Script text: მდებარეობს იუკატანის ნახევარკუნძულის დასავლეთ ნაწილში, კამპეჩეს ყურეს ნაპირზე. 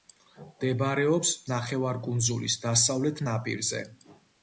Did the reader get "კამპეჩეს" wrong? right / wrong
wrong